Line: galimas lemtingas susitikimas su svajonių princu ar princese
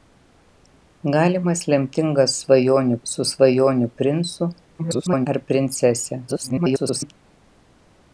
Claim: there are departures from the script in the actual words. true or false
true